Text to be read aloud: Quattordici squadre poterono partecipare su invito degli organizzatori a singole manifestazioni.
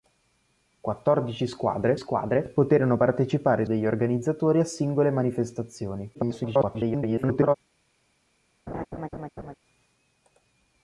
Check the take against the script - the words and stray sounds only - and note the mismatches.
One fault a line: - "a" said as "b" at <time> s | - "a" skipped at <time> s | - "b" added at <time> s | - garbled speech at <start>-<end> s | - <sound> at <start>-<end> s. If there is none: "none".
- "squadre" added at 1.9 s
- "su invito" skipped at 3.6 s
- garbled speech at 6.1-7.6 s
- laugh at 8.7-9.5 s